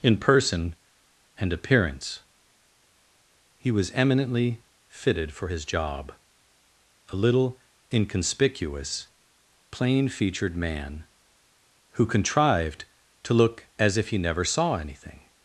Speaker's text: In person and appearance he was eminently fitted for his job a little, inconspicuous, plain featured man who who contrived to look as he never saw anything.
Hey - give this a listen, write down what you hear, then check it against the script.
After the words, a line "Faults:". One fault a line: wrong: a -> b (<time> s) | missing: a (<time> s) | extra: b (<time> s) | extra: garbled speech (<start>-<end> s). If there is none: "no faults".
In person and appearance he was eminently fitted for his job a little, inconspicuous, plain featured man who contrived to look as if he never saw anything.
Faults:
missing: who (12.0 s)
extra: if (14.0 s)